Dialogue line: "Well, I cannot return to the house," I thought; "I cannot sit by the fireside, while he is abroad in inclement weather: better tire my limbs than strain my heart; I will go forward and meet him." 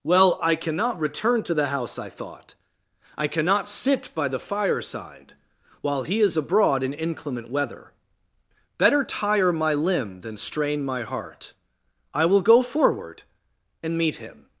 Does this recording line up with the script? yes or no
no